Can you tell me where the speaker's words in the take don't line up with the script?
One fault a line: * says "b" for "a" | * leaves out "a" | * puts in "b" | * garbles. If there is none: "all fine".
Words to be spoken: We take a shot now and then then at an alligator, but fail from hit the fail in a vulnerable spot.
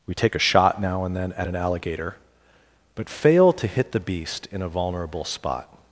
* leaves out "then"
* says "to" for "from"
* says "beast" for "fail"